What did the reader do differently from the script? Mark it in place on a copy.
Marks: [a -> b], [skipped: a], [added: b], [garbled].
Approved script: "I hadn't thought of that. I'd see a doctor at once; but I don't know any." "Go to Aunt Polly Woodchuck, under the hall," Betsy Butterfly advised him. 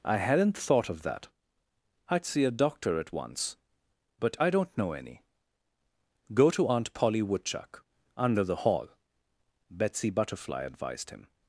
"I hadn't thought of that. I'd see a doctor at once; but I don't know any." "Go to Aunt Polly Woodchuck, under the hall," Betsy Butterfly advised him.